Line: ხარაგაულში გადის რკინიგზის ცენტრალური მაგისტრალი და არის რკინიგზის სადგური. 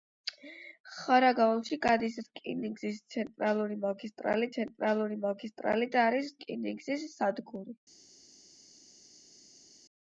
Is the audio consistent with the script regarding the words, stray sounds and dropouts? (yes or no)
no